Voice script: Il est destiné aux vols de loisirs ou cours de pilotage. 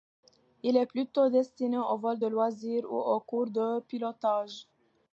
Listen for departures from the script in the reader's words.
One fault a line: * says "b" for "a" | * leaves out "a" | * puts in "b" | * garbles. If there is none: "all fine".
* puts in "plutôt"
* puts in "aux"